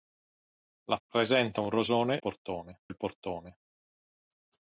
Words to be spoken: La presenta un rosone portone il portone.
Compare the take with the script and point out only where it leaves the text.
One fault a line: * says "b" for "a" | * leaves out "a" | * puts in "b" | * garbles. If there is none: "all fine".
all fine